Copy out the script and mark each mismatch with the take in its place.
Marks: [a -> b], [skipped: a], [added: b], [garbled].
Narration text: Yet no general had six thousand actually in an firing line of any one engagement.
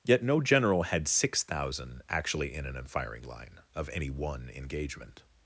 Yet no general had six thousand actually in an firing line of any one engagement.